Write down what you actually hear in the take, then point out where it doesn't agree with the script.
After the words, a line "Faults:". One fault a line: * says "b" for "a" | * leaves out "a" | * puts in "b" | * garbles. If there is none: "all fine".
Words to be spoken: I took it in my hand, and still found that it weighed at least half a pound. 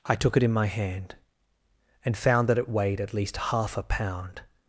I took it in my hand, and found that it weighed at least half a pound.
Faults:
* leaves out "still"